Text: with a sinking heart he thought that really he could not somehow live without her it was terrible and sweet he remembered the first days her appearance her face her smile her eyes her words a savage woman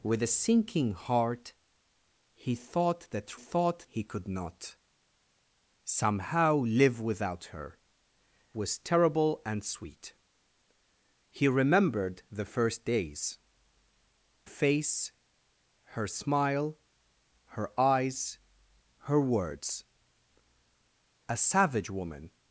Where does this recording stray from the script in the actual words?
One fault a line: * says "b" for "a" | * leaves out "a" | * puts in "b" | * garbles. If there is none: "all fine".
* says "thought" for "really"
* leaves out "it"
* leaves out "her appearance her"